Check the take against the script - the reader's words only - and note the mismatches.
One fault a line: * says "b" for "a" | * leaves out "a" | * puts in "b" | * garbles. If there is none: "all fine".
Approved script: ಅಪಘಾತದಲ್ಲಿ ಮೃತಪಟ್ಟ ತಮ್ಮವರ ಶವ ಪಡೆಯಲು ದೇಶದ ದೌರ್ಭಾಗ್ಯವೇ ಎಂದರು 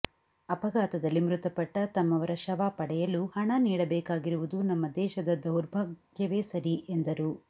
* puts in "ಹಣ ನೀಡಬೇಕಾಗಿರುವುದು ನಮ್ಮ"
* puts in "ಸರಿ"